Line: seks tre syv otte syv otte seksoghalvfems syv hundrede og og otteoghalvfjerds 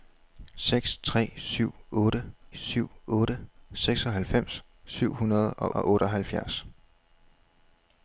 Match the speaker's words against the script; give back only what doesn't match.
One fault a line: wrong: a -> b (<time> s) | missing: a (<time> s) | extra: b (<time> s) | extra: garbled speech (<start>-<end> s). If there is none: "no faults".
no faults